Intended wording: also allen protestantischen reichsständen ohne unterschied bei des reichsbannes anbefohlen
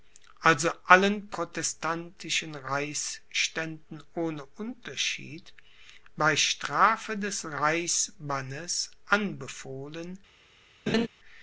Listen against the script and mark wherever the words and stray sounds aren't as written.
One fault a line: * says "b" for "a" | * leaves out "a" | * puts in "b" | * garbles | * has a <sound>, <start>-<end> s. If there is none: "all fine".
* puts in "strafe"
* has a laugh, 10.9-11.1 s